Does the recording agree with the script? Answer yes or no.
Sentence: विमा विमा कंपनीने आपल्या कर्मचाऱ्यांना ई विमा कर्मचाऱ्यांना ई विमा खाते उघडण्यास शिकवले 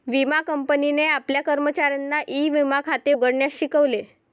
no